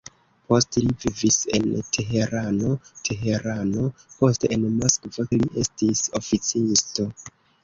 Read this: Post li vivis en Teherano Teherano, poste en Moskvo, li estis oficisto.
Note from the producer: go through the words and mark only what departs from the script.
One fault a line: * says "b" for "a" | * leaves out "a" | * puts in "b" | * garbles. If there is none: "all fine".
all fine